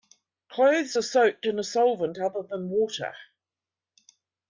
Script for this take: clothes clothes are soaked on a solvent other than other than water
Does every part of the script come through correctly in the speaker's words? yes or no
no